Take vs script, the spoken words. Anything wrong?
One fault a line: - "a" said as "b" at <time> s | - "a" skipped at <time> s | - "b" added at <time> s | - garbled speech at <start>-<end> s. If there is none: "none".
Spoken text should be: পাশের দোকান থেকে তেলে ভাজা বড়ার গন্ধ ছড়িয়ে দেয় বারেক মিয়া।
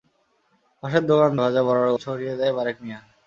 - "থেকে তেলে" skipped at 1.3 s
- "গন্ধ" skipped at 1.9 s